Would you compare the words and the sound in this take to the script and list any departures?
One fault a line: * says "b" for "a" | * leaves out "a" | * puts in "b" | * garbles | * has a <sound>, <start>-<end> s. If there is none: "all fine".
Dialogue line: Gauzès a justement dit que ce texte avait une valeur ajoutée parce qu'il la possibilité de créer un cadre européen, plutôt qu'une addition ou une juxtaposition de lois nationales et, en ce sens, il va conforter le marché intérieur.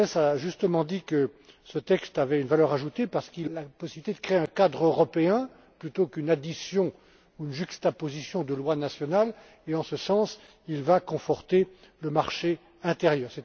all fine